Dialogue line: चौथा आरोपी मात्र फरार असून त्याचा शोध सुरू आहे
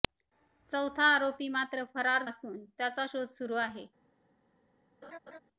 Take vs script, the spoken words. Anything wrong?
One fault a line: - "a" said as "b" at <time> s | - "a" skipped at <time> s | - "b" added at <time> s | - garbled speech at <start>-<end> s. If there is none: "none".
none